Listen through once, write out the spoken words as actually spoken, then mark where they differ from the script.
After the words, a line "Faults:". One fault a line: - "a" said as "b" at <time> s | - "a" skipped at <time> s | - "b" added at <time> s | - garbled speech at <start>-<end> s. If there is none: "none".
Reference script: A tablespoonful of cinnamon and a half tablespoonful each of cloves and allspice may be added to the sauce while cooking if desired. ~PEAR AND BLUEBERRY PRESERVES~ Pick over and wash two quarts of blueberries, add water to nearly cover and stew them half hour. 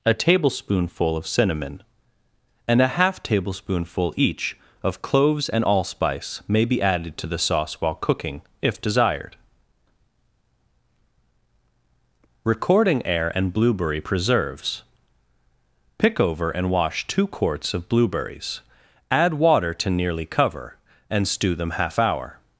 A tablespoonful of cinnamon and a half tablespoonful each of cloves and allspice may be added to the sauce while cooking if desired. ~Recording air AND BLUEBERRY PRESERVES~ Pick over and wash two quarts of blueberries, add water to nearly cover and stew them half hour.
Faults:
- "PEAR" said as "Recording air" at 12.4 s